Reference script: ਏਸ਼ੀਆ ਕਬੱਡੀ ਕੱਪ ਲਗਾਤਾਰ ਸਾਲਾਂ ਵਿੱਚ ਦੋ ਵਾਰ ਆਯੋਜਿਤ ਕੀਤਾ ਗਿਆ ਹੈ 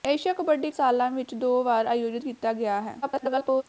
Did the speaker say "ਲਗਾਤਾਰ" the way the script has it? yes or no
no